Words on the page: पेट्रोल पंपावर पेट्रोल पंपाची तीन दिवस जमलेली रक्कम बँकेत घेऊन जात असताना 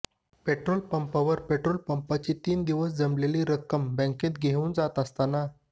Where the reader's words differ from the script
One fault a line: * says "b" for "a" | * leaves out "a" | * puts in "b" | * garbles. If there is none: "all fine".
all fine